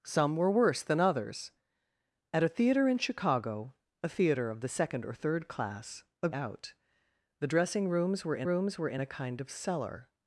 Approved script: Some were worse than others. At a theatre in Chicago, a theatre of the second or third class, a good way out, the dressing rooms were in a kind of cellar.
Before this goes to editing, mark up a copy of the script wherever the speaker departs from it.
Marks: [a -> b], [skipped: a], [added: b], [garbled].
Some were worse than others. At a theatre in Chicago, a theatre of the second or third class, a [skipped: good way] out, the dressing rooms were in [added: rooms were in] a kind of cellar.